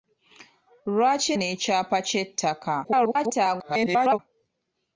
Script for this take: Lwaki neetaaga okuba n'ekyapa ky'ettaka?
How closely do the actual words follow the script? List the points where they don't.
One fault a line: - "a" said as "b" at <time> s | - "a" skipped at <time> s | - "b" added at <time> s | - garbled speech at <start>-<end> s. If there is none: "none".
- "neetaaga okuba" skipped at 1.3 s
- garbled speech at 2.8-4.2 s